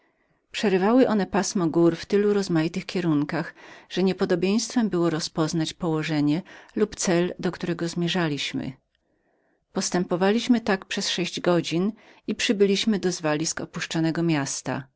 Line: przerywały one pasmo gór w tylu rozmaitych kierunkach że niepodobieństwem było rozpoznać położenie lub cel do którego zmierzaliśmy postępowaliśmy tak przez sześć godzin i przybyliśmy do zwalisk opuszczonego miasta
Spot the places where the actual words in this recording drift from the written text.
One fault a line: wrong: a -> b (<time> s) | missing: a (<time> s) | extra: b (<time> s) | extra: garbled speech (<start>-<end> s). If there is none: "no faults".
no faults